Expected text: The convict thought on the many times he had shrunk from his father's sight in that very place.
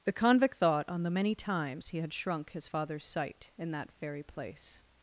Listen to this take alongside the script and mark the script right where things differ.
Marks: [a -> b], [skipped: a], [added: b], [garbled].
The convict thought on the many times he had shrunk [skipped: from] his father's sight in that very place.